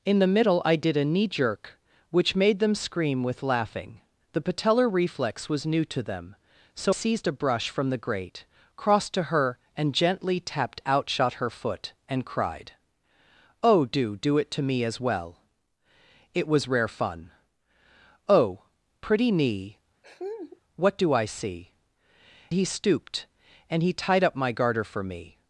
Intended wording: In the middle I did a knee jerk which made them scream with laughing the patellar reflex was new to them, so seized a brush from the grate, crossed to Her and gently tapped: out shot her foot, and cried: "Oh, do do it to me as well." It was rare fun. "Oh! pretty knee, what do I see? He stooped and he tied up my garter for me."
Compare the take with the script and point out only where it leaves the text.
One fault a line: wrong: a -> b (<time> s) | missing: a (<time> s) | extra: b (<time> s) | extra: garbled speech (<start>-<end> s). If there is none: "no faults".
no faults